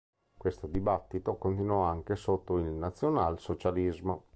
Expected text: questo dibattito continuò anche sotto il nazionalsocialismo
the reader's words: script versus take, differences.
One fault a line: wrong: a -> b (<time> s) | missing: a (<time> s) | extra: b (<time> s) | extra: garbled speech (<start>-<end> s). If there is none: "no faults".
no faults